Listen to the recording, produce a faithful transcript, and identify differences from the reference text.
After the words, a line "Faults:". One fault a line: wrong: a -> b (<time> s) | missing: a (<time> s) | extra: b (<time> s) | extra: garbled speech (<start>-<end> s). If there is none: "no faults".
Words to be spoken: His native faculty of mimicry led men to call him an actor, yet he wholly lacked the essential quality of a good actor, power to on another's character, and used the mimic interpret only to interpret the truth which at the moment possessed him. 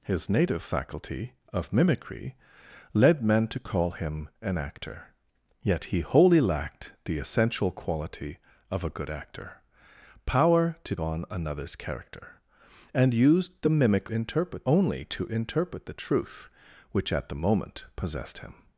His native faculty of mimicry led men to call him an actor, yet he wholly lacked the essential quality of a good actor, power to on another's character, and used the mimic interpret only to interpret the truth which at the moment possessed him.
Faults:
no faults